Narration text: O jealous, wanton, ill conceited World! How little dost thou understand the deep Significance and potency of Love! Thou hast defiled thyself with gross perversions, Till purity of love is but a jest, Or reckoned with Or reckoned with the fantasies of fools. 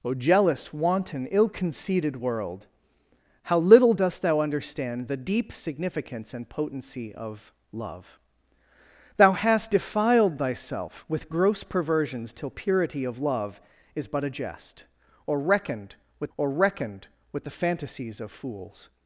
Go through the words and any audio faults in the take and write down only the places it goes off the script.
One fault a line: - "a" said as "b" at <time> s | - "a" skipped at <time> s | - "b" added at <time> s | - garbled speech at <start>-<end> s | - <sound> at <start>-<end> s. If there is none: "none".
none